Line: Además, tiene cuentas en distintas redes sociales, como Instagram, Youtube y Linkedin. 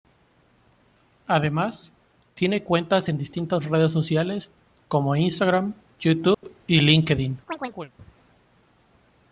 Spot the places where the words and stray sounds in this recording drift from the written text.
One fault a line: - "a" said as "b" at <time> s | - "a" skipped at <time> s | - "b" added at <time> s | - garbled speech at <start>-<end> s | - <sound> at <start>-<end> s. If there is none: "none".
- dropout at 6.3-6.4 s
- chirp at 7.5-7.9 s